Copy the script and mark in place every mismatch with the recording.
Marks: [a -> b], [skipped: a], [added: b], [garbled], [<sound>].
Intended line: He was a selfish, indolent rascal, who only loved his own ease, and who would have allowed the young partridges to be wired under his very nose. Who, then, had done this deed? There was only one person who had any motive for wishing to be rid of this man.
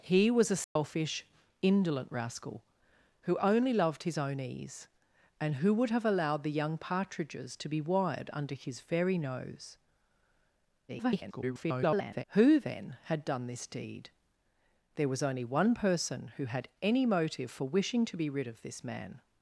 He was a selfish, [dropout] indolent rascal, who only loved his own ease, and who would have allowed the young partridges to be wired under his very nose. [garbled] Who, then, had done this deed? There was only one person who had any motive for wishing to be rid of this man.